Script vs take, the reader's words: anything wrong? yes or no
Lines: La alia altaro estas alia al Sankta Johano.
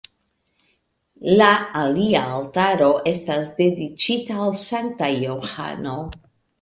yes